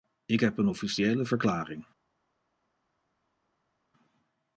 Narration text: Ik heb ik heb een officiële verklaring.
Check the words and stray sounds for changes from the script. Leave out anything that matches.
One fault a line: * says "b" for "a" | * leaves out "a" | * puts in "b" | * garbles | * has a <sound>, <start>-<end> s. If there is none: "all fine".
* leaves out "ik heb"